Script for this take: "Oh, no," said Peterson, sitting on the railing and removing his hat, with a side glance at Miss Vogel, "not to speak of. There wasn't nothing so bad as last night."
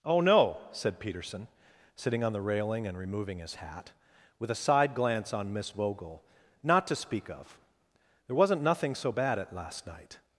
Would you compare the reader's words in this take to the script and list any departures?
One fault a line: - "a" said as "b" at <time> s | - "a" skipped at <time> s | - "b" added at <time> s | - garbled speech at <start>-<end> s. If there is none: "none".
- "at" said as "on" at 5.3 s
- "as" said as "at" at 9.4 s